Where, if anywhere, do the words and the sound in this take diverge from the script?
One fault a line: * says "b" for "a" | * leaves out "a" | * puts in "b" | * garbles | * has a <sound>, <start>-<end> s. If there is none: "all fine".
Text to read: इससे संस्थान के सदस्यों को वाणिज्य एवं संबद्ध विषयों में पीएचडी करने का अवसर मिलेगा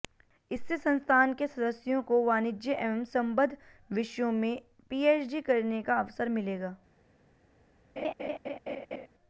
* has a laugh, 8.0-9.1 s